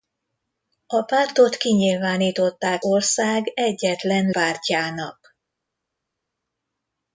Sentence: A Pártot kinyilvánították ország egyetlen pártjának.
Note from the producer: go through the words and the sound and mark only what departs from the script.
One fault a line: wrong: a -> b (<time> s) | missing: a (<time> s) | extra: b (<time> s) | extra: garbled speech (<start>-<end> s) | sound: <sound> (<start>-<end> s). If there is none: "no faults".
no faults